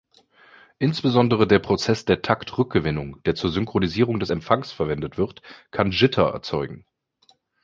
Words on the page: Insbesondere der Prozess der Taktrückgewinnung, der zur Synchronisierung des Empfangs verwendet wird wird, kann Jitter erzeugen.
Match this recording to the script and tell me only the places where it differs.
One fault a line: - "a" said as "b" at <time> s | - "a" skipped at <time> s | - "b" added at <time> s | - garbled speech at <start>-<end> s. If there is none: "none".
- "wird" skipped at 5.4 s